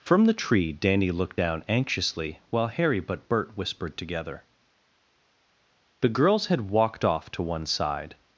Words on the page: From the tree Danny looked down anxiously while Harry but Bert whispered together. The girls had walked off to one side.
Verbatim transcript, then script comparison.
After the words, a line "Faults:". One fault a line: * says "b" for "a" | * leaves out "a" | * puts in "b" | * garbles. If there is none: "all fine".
From the tree Danny looked down anxiously while Harry but Bert whispered together. The girls had walked off to one side.
Faults:
all fine